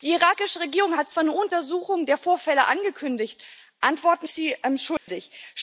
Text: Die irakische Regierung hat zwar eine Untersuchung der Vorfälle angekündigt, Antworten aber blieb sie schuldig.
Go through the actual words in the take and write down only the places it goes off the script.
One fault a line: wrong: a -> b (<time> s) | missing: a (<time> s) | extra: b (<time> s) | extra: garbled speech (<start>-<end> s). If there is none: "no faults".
missing: aber blieb (4.3 s)